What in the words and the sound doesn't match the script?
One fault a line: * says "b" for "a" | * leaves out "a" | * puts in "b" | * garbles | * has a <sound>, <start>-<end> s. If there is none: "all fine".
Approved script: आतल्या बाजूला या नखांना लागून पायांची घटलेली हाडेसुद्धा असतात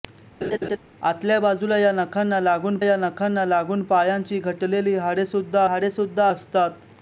* has a laugh, 0.4-0.8 s
* puts in "या नखांना लागून"
* puts in "हाडेसुद्धा"